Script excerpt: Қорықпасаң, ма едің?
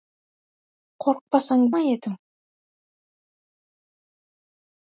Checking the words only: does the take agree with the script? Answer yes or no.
yes